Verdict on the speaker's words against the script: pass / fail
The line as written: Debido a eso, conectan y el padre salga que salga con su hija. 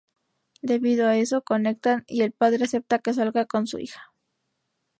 fail